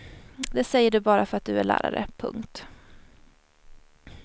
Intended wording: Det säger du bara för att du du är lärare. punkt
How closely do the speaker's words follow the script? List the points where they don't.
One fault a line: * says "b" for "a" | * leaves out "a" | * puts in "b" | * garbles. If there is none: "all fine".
* leaves out "du"